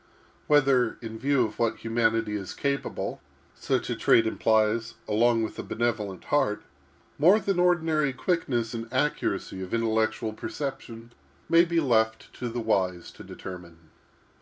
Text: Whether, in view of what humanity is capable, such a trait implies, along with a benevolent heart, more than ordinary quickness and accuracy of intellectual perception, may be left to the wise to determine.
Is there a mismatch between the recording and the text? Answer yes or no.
no